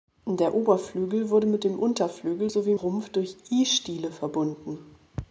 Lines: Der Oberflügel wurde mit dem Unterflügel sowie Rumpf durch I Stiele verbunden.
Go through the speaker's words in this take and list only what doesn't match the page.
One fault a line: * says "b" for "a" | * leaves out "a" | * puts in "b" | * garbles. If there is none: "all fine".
all fine